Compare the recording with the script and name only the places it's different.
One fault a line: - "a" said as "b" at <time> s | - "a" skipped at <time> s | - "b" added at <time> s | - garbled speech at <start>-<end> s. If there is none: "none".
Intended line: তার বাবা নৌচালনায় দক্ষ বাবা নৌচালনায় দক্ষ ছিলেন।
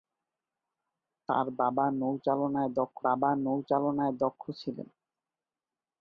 none